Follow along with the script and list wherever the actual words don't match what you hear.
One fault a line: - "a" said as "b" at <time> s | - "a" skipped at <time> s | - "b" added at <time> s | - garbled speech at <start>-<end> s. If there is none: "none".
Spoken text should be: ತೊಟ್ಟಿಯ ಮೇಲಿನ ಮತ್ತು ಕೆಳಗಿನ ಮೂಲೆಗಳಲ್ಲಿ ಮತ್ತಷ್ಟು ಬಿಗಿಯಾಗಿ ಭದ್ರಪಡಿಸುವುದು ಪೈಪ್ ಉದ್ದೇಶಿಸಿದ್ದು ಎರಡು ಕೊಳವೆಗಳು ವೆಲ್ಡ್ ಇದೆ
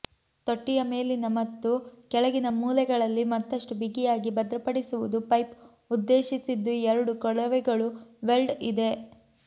none